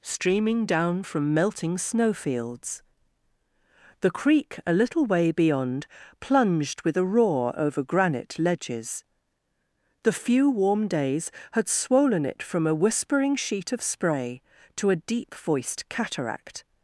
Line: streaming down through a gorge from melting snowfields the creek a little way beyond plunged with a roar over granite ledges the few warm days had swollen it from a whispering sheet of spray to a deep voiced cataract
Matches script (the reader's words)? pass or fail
fail